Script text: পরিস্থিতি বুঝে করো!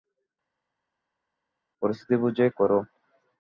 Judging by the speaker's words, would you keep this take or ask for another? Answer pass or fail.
pass